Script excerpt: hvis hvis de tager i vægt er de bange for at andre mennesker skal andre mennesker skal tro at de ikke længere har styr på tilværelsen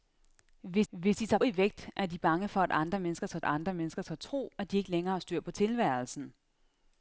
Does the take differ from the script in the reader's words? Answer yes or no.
no